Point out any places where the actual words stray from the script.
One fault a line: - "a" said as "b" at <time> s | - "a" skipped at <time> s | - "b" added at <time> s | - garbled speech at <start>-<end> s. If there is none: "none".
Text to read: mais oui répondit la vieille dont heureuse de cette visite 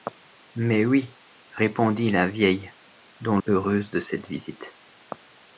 none